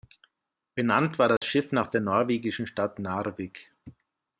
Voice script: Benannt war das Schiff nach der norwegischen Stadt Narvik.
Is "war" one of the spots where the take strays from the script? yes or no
no